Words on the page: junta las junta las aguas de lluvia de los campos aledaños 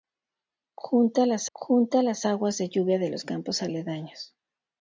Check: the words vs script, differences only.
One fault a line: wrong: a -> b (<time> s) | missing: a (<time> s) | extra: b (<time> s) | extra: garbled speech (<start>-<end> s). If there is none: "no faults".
no faults